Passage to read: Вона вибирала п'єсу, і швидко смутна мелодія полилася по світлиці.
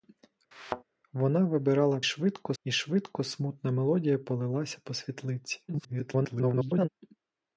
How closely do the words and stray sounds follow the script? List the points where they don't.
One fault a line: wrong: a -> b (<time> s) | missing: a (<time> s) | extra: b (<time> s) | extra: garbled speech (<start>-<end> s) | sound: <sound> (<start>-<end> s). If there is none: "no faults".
sound: thud (0.5-0.8 s)
wrong: п'єсу -> швидко (2.0 s)
extra: garbled speech (5.7-6.9 s)